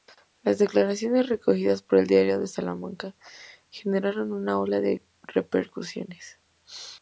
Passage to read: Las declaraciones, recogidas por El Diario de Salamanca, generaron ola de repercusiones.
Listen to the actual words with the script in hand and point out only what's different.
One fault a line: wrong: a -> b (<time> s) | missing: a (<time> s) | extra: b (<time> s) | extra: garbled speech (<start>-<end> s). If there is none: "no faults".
extra: una (4.3 s)